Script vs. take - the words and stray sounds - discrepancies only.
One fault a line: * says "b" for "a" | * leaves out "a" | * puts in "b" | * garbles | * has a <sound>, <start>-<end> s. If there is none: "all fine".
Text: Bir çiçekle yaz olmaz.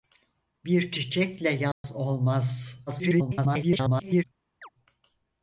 * has a dropout, 1.7-1.8 s
* garbles
* has a chirp, 4.6-4.7 s